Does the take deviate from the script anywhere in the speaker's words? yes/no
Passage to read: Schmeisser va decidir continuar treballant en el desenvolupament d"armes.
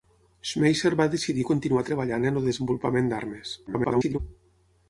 yes